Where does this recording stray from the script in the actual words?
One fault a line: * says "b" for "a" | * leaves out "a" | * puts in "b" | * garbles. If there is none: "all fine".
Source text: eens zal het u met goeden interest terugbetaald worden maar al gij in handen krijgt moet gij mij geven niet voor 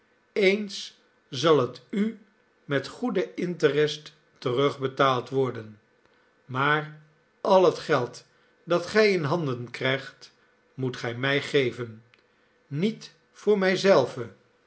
* puts in "het geld dat"